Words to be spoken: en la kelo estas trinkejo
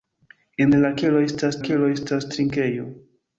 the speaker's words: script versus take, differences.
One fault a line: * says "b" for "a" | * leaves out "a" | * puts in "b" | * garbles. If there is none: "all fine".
* puts in "kelo estas"